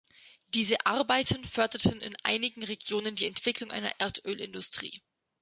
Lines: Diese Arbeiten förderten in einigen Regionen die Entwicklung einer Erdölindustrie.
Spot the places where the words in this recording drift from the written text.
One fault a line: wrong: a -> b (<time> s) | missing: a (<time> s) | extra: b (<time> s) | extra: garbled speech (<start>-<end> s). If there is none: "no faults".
no faults